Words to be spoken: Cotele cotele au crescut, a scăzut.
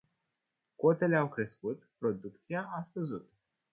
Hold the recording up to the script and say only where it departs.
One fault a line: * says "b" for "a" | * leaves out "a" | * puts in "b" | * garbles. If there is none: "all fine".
* leaves out "cotele"
* puts in "producția"